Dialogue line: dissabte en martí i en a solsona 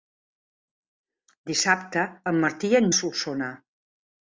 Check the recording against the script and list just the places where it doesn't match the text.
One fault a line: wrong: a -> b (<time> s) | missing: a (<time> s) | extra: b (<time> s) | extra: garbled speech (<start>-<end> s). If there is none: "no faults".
no faults